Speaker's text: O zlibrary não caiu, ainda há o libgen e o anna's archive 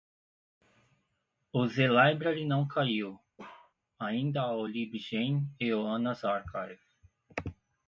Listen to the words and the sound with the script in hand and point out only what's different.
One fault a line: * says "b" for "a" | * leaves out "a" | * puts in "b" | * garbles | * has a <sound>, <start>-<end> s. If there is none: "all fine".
* has a bark, 3.4-3.7 s